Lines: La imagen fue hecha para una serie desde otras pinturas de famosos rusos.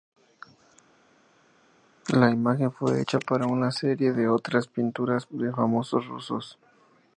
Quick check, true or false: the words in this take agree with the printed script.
false